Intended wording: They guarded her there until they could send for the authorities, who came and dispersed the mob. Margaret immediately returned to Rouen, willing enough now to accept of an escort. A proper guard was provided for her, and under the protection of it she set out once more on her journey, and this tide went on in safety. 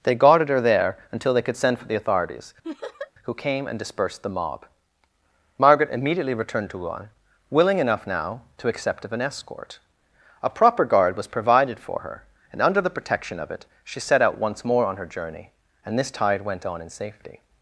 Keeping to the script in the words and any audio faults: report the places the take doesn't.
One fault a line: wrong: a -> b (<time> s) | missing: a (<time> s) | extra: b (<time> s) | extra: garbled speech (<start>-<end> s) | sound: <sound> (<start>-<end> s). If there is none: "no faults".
sound: laugh (2.6-3.1 s)